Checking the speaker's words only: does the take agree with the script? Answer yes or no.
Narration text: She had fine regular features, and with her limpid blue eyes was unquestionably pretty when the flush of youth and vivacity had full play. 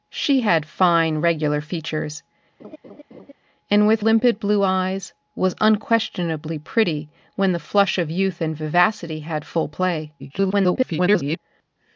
no